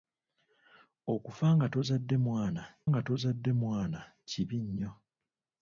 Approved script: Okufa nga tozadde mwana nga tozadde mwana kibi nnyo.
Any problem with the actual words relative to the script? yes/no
no